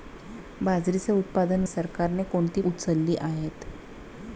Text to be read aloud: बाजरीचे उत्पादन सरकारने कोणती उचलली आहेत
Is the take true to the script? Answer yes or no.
yes